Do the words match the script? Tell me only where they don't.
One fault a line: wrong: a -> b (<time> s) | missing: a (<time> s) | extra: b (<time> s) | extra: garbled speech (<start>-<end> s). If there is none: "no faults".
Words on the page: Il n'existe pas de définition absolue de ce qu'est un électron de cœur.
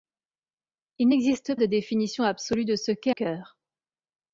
missing: pas (1.6 s)
missing: un électron de (3.1 s)